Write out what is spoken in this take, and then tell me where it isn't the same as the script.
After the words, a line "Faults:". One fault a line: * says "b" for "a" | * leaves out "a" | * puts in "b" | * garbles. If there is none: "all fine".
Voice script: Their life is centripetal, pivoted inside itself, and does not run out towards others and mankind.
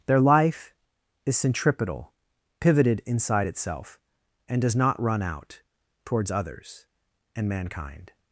Their life is centripetal, pivoted inside itself, and does not run out towards others and mankind.
Faults:
all fine